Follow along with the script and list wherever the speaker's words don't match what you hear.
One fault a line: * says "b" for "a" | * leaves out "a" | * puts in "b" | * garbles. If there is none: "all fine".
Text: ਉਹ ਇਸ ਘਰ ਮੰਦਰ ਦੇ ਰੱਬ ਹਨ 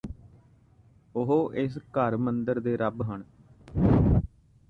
all fine